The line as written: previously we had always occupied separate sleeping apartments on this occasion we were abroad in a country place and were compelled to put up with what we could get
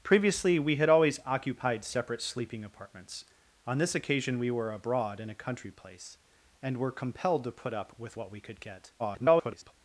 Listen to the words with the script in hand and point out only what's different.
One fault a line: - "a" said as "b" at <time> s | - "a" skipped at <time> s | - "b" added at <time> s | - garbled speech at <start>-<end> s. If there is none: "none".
- garbled speech at 9.0-9.7 s